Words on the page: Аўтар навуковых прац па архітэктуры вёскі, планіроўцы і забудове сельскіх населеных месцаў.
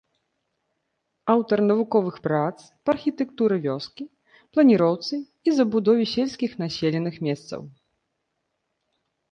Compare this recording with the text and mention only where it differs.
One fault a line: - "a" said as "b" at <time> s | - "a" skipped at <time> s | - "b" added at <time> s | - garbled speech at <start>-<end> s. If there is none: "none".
none